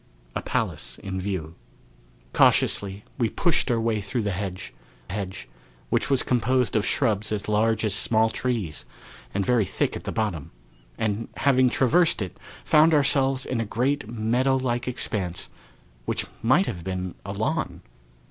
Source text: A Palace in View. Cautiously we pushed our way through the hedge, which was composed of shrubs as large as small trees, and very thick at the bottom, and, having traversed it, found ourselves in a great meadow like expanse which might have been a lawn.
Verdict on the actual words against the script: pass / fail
fail